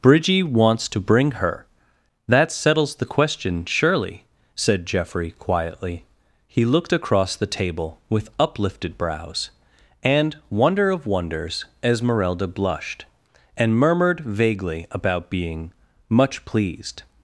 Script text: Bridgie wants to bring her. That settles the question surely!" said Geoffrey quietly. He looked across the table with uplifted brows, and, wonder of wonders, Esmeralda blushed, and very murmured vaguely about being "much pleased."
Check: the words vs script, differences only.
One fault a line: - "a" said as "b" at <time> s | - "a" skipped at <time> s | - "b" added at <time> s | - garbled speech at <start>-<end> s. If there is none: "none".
- "very" skipped at 13.8 s